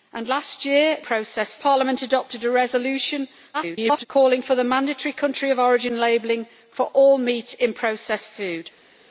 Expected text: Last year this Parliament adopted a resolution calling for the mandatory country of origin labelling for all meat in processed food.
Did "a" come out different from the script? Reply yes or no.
no